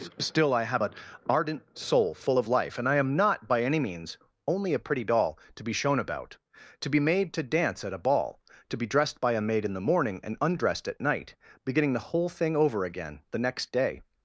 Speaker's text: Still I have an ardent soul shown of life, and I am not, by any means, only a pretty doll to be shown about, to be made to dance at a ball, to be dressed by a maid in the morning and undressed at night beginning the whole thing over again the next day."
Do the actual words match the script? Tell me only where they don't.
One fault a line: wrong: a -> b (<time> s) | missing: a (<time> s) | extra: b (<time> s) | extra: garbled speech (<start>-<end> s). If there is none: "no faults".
wrong: shown -> full (2.1 s)